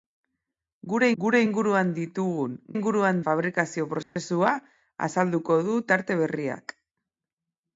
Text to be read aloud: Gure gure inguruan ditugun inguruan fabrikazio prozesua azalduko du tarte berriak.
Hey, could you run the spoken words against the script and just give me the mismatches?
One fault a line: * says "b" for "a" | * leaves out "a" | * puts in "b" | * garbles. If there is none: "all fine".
all fine